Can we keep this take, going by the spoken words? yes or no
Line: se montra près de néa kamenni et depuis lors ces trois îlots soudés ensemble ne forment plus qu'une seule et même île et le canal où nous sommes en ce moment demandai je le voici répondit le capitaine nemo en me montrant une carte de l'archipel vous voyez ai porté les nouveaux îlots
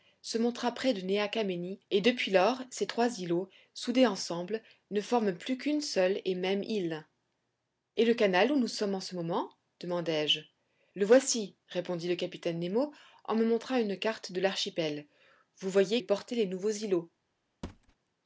yes